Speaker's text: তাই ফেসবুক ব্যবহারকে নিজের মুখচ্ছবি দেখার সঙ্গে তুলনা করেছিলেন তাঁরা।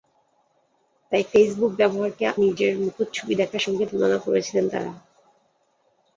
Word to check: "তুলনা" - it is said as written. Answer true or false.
true